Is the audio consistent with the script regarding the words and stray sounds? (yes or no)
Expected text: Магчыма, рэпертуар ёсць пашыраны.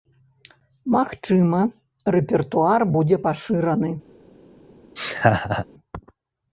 no